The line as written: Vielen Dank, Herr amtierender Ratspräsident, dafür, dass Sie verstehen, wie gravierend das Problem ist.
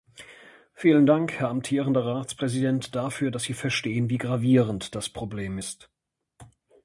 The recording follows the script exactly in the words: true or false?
true